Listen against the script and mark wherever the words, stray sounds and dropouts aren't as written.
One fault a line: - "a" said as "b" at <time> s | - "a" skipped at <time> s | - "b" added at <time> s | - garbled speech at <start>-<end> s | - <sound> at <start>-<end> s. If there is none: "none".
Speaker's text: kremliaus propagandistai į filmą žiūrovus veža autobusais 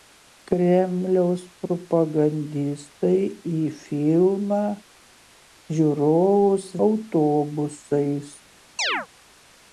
- "veža" skipped at 6.7 s
- chirp at 8.8-9.1 s